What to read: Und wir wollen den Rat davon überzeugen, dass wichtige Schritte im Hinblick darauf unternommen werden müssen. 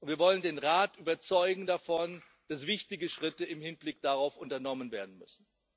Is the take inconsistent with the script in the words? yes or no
no